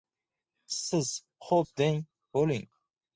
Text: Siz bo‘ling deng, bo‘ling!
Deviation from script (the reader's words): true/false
true